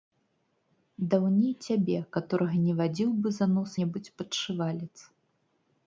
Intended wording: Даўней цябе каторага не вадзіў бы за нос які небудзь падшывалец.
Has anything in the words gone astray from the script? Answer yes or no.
yes